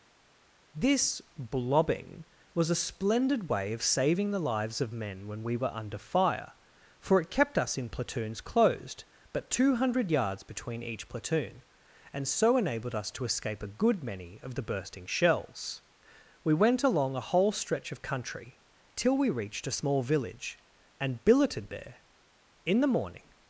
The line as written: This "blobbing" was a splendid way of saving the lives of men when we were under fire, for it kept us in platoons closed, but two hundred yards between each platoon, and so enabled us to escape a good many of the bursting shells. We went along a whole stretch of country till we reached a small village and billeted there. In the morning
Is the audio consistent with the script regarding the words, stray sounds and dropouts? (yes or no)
yes